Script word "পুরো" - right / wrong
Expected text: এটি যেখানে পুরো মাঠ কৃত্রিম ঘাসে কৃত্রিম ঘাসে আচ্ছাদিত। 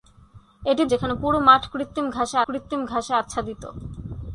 right